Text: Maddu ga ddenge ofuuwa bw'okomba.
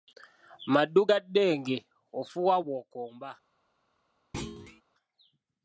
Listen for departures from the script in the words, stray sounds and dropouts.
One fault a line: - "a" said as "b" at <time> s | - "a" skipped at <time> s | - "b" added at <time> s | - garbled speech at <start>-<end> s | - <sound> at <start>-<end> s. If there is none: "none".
- thud at 4.3-4.8 s